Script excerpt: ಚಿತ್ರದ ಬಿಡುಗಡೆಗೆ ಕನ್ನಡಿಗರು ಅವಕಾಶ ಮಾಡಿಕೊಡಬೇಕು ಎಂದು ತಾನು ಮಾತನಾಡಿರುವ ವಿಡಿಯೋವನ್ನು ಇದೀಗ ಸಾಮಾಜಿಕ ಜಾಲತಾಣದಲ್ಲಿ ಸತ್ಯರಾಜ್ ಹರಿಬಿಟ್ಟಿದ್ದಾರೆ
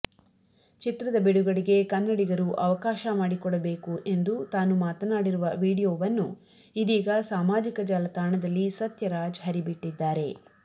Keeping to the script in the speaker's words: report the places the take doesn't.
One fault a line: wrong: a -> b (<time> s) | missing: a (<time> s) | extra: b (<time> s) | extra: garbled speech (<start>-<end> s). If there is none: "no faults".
no faults